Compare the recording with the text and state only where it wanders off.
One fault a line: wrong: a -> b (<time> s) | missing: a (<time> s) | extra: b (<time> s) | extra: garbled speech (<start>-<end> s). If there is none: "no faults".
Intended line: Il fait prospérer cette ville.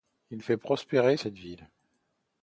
no faults